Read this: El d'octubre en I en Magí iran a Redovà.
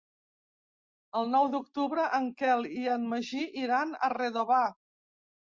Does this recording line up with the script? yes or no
no